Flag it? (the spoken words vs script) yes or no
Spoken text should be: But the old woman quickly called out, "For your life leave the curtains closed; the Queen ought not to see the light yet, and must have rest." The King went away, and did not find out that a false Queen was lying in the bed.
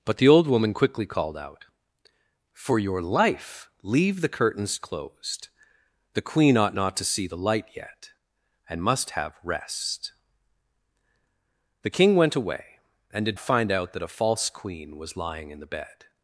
yes